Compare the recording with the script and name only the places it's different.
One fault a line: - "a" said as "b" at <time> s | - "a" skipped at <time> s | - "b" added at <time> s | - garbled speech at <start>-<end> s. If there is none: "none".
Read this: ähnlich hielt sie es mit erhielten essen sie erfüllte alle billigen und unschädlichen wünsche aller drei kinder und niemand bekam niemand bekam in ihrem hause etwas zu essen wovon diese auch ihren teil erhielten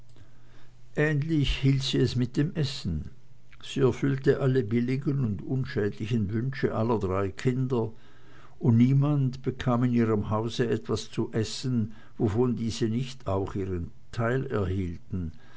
- "erhielten" said as "dem" at 2.4 s
- "niemand bekam" skipped at 9.8 s
- "nicht" added at 12.9 s